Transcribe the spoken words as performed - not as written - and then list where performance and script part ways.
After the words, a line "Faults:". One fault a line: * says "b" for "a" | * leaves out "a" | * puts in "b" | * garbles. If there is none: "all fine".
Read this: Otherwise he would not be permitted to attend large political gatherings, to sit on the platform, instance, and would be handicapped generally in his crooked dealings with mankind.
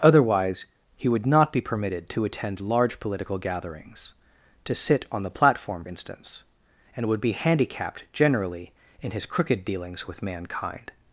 Otherwise he would not be permitted to attend large political gatherings, to sit on the platform, instance, and would be handicapped generally in his crooked dealings with mankind.
Faults:
all fine